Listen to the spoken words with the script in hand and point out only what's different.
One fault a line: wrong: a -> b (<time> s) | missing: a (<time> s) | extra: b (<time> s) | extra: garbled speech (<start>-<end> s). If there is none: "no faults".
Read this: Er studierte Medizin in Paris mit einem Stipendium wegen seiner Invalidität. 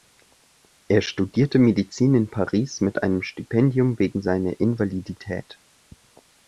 no faults